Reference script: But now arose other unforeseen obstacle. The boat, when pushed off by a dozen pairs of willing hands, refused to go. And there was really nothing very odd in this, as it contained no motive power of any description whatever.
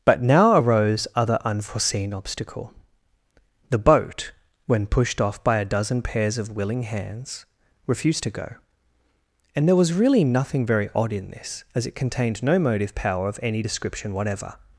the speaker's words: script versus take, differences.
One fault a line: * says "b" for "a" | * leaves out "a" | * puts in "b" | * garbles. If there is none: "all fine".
all fine